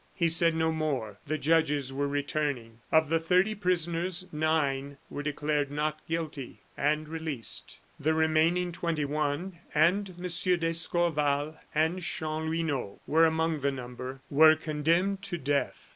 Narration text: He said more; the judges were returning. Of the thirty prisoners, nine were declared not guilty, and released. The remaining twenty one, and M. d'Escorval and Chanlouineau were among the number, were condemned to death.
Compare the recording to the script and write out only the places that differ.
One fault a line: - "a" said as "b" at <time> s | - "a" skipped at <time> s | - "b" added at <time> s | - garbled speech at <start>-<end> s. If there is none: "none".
- "no" added at 0.6 s